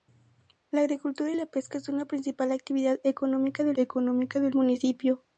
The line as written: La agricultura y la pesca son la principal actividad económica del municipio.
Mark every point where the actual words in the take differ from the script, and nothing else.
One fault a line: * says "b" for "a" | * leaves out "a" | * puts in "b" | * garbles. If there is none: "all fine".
* puts in "económica del"